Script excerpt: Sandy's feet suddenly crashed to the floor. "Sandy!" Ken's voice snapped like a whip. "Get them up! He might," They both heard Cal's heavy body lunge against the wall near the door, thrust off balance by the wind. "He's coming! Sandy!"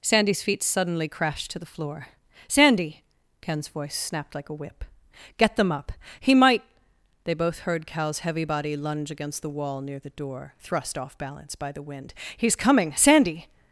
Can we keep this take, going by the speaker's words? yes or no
yes